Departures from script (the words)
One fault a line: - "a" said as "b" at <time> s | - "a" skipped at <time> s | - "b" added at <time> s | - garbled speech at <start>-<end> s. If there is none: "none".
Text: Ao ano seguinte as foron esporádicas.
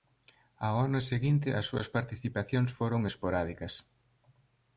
- "súas participacións" added at 1.7 s